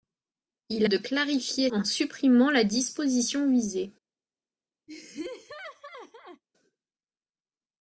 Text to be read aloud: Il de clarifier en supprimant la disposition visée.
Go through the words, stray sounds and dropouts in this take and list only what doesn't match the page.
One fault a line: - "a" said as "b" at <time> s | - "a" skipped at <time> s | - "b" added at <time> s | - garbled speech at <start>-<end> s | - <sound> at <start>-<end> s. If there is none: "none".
- laugh at 4.9-6.4 s